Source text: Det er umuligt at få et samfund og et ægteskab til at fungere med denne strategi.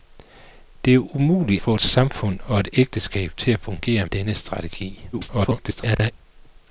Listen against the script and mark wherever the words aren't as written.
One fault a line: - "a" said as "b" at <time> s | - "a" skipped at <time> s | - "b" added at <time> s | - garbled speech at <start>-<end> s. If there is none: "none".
- "at" skipped at 1.6 s
- "med" skipped at 4.1 s
- garbled speech at 5.1-6.1 s